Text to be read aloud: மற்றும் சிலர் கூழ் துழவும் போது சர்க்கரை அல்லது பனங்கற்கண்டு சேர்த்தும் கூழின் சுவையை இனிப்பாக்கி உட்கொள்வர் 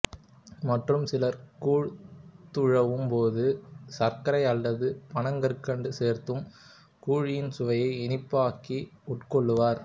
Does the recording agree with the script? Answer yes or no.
yes